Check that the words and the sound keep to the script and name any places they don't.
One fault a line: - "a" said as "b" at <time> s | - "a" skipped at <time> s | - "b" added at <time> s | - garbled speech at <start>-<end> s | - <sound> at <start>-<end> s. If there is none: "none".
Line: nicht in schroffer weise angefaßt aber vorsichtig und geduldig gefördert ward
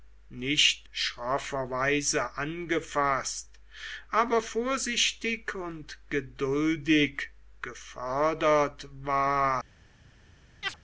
- "in" skipped at 0.9 s
- chirp at 10.6-10.8 s